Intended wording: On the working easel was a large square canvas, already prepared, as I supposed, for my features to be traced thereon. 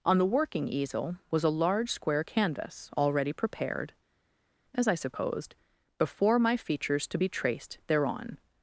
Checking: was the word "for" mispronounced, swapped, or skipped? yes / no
yes